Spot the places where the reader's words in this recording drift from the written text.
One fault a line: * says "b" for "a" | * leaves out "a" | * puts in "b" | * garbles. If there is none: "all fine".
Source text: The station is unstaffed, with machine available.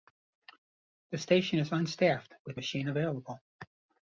all fine